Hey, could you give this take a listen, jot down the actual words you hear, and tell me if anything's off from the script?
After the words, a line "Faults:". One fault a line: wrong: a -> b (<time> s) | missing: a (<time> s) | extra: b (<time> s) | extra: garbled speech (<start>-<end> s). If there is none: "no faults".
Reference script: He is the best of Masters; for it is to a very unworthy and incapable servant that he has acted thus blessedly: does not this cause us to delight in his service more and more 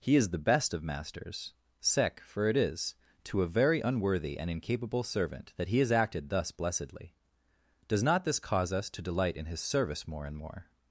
He is the best of Masters; sec for it is to a very unworthy and incapable servant that he has acted thus blessedly: does not this cause us to delight in his service more and more
Faults:
extra: sec (1.8 s)